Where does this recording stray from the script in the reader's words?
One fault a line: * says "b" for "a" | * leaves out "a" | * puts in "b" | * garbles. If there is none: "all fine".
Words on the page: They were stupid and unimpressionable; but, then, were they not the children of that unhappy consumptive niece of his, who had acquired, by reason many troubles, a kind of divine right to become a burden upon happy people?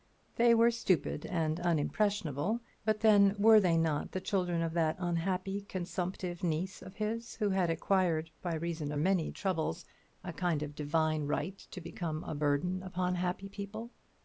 all fine